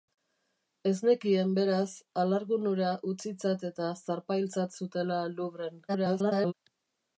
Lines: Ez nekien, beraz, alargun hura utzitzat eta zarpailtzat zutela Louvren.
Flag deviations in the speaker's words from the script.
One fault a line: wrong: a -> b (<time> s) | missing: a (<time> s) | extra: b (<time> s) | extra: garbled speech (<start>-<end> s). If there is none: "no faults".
extra: garbled speech (5.9-6.5 s)